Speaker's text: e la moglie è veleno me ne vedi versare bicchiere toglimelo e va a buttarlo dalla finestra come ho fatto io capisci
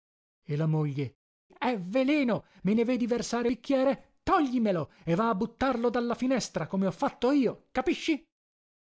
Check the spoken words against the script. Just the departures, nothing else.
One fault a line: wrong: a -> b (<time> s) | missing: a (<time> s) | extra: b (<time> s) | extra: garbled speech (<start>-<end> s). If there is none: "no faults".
no faults